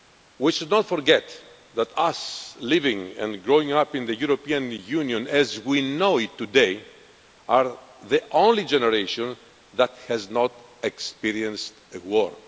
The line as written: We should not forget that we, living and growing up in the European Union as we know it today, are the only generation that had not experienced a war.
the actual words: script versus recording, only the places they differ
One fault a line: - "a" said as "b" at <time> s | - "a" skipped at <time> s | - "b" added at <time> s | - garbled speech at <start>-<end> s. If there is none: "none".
- "had" said as "has" at 10.1 s